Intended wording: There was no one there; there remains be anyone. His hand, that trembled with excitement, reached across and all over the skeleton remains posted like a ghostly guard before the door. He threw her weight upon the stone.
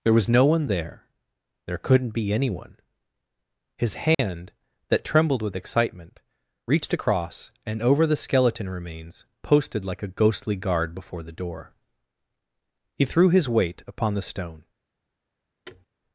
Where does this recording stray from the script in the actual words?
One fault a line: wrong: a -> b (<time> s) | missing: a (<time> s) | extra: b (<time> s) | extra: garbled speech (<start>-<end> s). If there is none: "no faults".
wrong: remains -> couldn't (1.8 s)
missing: all (7.8 s)
wrong: her -> his (13.3 s)